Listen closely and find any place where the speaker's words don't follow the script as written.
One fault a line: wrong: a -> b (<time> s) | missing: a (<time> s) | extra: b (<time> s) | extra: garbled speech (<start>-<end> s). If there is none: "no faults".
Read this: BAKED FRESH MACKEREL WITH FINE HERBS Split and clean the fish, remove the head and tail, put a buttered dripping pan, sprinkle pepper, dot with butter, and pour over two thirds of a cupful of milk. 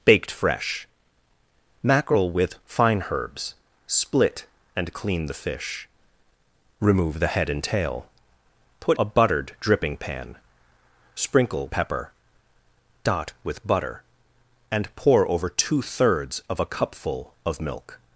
no faults